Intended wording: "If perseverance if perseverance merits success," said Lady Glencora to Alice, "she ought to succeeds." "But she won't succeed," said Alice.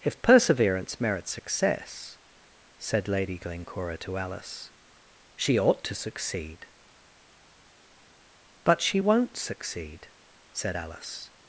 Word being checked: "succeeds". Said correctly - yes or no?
no